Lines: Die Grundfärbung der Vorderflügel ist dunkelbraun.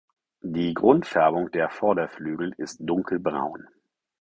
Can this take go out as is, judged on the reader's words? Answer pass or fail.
pass